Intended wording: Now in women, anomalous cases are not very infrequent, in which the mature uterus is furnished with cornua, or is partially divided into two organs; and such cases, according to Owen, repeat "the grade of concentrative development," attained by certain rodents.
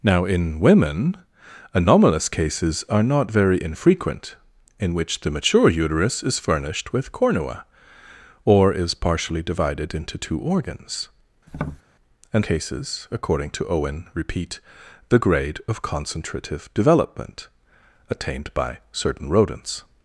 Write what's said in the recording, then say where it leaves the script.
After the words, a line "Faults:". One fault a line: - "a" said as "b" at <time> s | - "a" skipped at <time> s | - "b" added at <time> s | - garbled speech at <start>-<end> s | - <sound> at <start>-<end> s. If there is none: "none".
Now in women, anomalous cases are not very infrequent, in which the mature uterus is furnished with cornua, or is partially divided into two organs; and cases, according to Owen, repeat "the grade of concentrative development," attained by certain rodents.
Faults:
- tap at 11.5-11.8 s
- "such" skipped at 12.5 s